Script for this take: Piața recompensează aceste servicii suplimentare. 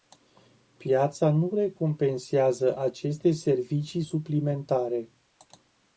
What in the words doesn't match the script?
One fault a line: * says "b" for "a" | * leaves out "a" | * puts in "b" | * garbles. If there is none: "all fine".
* puts in "nu"